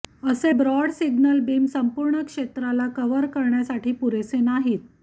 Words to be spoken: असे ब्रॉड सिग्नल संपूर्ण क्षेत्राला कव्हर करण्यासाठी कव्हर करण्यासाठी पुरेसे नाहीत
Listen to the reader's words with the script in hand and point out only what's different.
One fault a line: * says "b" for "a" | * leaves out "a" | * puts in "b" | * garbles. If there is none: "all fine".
* puts in "बीम"
* leaves out "कव्हर करण्यासाठी"